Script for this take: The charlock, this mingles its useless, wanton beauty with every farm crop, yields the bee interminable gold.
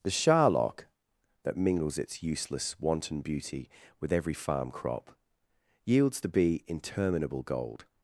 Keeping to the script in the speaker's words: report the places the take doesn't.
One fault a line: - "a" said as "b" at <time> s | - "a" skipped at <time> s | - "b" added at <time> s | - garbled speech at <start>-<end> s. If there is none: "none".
- "this" said as "that" at 1.4 s